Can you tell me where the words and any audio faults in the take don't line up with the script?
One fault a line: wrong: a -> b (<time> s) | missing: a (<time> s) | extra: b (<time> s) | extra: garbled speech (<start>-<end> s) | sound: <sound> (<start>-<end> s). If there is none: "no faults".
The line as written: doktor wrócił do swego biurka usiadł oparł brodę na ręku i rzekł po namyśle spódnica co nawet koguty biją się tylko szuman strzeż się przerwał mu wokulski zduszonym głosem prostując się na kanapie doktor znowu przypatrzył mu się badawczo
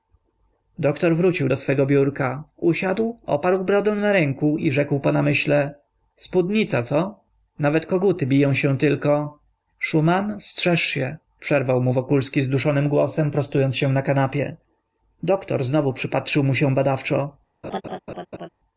sound: laugh (17.6-18.5 s)